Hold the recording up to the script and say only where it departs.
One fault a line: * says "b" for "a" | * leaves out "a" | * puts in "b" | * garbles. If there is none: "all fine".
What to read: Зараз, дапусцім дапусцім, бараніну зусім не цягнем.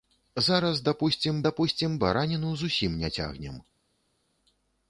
all fine